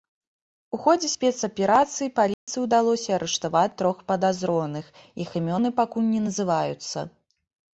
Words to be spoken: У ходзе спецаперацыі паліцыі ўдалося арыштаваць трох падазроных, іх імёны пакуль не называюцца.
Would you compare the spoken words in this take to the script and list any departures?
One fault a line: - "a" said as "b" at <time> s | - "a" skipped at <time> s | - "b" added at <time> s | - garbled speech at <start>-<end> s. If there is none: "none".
none